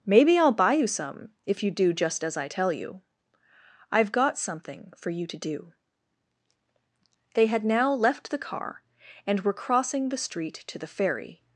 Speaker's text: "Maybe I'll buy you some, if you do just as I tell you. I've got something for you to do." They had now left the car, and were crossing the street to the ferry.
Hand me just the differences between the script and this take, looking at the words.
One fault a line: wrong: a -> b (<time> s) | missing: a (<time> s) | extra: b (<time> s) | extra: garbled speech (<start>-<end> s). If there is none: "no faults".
no faults